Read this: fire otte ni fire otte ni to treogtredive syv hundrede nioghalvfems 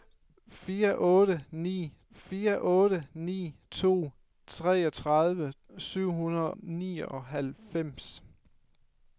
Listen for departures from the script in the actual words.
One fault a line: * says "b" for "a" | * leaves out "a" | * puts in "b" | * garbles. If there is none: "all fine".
all fine